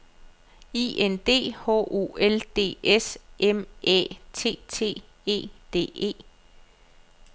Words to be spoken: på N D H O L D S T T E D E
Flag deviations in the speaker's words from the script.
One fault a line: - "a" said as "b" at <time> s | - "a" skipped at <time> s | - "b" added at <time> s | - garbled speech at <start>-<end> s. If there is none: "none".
- "på" said as "I" at 0.7 s
- "M Æ" added at 3.4 s